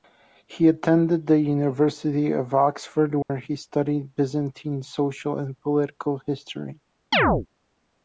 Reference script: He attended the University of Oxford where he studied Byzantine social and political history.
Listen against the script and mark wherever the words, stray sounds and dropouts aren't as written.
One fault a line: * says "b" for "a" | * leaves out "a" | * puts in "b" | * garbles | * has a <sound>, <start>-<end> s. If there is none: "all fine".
* has a dropout, 3.2-3.3 s
* has a chirp, 7.1-7.5 s